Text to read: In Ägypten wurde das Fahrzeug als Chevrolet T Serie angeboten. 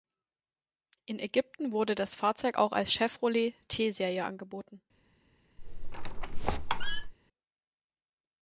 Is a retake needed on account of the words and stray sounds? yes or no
yes